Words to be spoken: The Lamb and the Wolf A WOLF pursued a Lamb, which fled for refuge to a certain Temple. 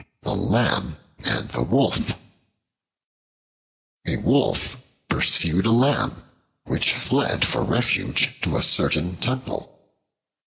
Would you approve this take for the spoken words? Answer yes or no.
yes